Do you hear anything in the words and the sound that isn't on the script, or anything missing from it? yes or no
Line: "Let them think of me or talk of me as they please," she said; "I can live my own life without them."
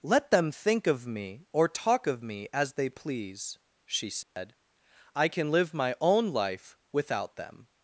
yes